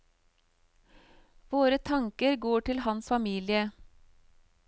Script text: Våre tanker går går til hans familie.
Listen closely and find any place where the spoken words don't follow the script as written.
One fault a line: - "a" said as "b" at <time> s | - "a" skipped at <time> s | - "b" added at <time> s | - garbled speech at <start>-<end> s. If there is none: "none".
- "går" skipped at 2.6 s